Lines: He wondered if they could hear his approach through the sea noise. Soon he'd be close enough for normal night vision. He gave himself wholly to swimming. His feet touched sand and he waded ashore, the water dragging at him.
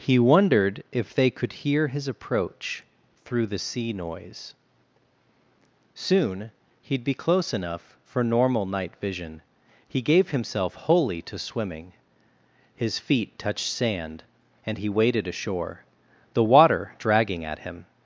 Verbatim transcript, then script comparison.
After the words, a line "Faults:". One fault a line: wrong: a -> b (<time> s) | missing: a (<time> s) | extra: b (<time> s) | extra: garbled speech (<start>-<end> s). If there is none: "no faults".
He wondered if they could hear his approach through the sea noise. Soon he'd be close enough for normal night vision. He gave himself wholly to swimming. His feet touched sand and he waded ashore, the water dragging at him.
Faults:
no faults